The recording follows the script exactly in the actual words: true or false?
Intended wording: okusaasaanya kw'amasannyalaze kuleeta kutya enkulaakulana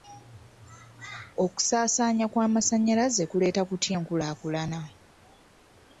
true